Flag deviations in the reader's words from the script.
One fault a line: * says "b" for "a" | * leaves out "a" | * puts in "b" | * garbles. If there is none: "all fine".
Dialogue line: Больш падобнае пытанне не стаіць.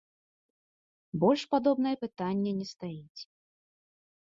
all fine